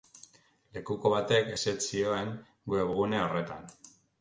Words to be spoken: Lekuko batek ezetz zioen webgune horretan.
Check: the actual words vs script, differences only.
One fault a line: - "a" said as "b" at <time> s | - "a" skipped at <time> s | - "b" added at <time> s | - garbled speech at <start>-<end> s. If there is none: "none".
none